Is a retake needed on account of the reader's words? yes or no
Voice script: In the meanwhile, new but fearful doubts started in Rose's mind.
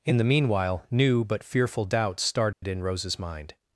no